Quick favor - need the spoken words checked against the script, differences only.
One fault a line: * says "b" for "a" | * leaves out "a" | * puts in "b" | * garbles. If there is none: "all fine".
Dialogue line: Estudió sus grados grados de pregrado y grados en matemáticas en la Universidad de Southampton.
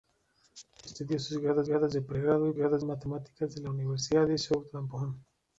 all fine